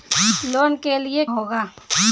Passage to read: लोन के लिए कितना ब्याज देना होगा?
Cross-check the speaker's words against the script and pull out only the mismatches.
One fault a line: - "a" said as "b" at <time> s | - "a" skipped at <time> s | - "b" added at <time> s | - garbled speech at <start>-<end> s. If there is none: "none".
- "कितना ब्याज देना" skipped at 1.2 s